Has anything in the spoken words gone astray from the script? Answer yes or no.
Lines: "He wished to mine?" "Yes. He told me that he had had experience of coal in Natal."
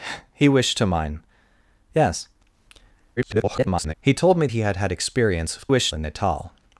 yes